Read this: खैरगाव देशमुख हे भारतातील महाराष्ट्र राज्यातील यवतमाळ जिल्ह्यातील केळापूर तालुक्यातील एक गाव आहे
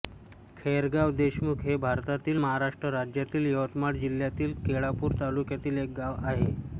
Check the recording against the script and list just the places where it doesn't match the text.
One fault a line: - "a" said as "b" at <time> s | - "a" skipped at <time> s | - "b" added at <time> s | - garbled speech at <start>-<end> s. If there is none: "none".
none